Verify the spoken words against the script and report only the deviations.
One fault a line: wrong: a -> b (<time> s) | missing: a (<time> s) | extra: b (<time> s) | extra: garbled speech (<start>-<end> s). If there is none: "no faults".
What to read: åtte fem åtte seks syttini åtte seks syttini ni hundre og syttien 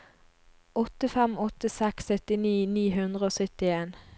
missing: åtte seks syttini (2.5 s)